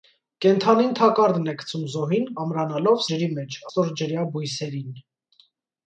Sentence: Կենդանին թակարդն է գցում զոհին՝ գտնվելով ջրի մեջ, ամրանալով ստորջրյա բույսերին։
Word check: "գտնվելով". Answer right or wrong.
wrong